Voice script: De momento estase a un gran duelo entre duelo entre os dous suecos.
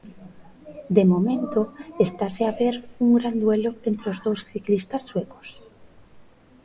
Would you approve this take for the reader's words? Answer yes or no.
no